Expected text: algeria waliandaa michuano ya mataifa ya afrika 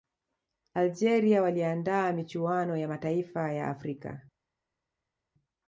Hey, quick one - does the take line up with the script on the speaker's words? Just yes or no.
yes